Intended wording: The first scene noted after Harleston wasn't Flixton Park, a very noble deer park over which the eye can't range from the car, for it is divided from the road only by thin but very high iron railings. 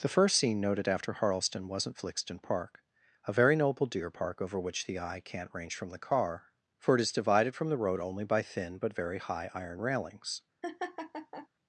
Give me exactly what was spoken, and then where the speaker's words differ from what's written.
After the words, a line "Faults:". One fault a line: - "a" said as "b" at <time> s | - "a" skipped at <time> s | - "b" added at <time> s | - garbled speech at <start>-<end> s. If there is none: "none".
The first scene noted after Harleston wasn't Flixton Park, a very noble deer park over which the eye can't range from the car, for it is divided from the road only by thin but very high iron railings.
Faults:
none